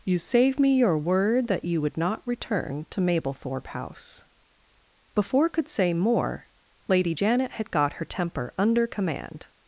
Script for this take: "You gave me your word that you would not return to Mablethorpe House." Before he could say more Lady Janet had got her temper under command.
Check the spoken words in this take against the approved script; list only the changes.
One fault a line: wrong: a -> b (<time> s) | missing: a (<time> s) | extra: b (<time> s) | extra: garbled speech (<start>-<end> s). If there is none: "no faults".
wrong: gave -> save (0.2 s)
missing: he (5.5 s)